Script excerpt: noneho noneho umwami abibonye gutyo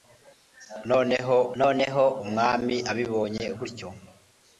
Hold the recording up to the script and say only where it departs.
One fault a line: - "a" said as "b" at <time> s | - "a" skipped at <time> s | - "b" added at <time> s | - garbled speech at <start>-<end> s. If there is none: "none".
none